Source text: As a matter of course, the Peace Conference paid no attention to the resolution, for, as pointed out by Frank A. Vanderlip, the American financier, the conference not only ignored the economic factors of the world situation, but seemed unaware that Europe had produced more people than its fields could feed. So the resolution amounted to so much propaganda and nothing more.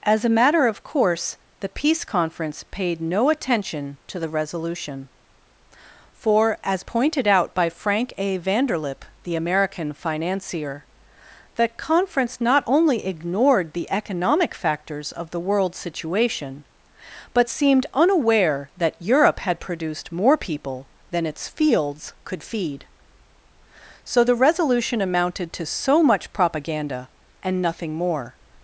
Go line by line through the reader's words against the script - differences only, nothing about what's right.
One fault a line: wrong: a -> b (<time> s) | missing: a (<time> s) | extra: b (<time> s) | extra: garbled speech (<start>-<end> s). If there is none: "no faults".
no faults